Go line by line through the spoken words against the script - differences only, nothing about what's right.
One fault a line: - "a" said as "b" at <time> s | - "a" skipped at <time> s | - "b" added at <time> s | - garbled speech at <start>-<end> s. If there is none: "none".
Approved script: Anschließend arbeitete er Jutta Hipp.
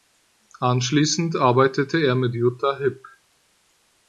- "mit" added at 2.1 s